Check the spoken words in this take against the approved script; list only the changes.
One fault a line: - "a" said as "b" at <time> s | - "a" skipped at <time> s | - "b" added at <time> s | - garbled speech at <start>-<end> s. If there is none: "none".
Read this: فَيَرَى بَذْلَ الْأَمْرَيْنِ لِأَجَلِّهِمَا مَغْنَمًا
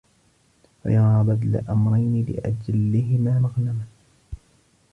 none